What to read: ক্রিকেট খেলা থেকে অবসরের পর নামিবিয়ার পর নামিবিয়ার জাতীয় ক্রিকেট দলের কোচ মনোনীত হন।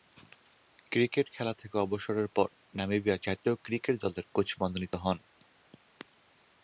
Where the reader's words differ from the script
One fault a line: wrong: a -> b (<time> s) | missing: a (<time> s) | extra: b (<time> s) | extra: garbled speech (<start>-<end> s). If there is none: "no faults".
missing: পর নামিবিয়ার (3.2 s)